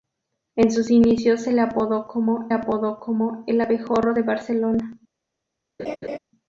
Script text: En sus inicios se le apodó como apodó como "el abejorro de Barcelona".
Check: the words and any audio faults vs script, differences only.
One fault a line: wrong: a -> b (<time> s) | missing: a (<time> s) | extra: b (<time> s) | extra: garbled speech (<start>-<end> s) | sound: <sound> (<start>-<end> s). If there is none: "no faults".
sound: laugh (5.8-6.2 s)